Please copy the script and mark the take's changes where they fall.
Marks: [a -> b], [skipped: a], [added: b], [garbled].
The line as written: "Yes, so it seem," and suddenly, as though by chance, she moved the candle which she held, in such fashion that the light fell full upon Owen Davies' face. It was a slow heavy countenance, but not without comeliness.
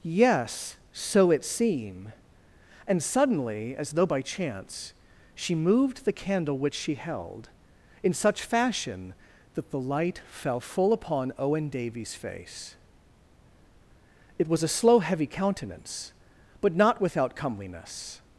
"Yes, so it seem," and suddenly, as though by chance, she moved the candle which she held, in such fashion that the light fell full upon Owen Davies' face. It was a slow heavy countenance, but not without comeliness.